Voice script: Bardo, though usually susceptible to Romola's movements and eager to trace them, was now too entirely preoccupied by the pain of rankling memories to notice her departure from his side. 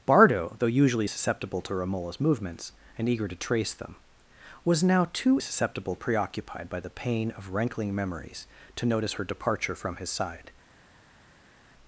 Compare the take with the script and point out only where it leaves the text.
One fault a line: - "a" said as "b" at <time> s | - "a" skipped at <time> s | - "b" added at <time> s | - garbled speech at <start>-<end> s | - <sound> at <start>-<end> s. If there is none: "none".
- "entirely" said as "susceptible" at 5.4 s